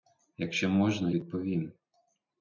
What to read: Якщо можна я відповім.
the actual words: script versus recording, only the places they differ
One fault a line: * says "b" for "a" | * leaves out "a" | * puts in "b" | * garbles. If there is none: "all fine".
* leaves out "я"